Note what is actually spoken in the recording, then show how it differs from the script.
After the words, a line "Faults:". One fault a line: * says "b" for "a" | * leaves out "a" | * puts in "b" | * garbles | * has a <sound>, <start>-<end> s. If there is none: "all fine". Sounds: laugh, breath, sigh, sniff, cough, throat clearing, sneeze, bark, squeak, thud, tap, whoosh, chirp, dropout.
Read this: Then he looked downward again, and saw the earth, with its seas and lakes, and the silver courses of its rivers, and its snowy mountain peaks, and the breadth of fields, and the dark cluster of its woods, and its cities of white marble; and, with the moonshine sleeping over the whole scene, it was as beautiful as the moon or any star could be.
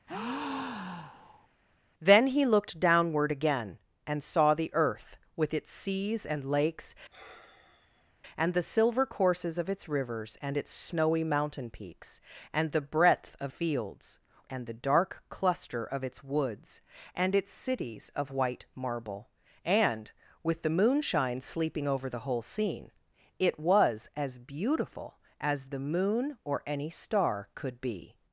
Then he looked downward again, and saw the earth, with its seas and lakes, and the silver courses of its rivers, and its snowy mountain peaks, and the breadth of fields, and the dark cluster of its woods, and its cities of white marble; and, with the moonshine sleeping over the whole scene, it was as beautiful as the moon or any star could be.
Faults:
* has a breath, 0.1-1.5 s
* has a sigh, 7.1-8.1 s